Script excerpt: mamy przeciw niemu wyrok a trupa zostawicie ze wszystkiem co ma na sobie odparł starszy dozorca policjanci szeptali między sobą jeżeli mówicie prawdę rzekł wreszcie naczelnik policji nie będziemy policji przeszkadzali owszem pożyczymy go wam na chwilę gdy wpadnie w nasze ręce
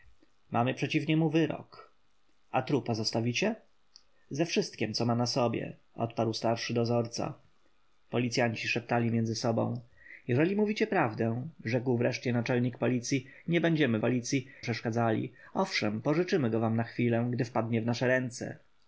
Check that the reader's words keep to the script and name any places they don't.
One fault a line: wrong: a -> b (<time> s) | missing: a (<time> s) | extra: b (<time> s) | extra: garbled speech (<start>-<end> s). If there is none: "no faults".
no faults